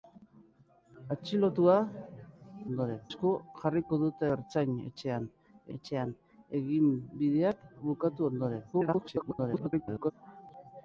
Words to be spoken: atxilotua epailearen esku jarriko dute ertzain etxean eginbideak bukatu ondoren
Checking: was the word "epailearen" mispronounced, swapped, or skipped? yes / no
yes